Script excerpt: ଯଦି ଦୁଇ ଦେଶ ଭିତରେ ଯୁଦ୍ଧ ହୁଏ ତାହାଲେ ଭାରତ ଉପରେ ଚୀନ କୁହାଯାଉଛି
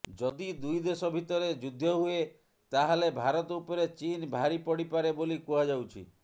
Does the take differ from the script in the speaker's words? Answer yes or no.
yes